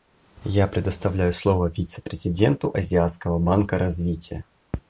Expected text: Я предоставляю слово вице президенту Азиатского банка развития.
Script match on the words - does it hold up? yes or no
yes